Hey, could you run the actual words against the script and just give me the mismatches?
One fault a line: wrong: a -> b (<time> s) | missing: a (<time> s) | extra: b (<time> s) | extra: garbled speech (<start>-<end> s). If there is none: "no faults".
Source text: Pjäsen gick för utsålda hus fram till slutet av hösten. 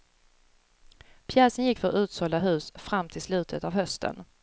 no faults